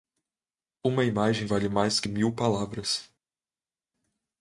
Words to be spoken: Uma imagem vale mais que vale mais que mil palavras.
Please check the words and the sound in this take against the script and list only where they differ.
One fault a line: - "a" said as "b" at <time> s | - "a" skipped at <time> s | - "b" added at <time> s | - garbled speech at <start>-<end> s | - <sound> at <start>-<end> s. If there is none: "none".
- "vale mais que" skipped at 2.1 s